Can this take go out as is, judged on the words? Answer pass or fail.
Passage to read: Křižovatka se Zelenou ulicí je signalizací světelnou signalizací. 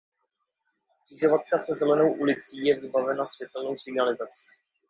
fail